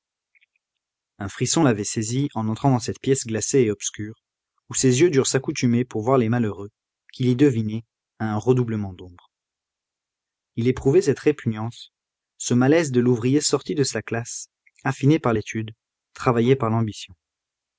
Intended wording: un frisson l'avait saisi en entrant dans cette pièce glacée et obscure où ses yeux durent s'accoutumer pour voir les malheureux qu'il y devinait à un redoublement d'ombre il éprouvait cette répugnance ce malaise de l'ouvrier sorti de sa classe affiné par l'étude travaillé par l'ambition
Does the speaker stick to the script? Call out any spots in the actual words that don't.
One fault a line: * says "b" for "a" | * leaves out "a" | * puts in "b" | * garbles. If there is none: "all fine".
all fine